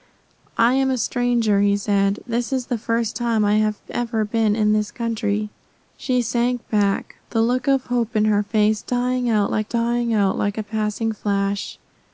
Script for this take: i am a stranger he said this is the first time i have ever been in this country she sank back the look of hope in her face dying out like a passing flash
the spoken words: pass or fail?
fail